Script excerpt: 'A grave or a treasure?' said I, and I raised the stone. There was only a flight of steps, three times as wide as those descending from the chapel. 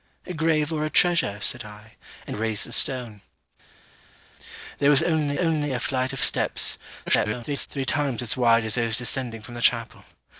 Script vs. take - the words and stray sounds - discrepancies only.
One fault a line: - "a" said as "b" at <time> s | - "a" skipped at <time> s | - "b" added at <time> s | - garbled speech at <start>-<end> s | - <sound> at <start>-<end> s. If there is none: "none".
- "I" skipped at 2.4 s
- "only" added at 5.3 s
- garbled speech at 7.1-7.7 s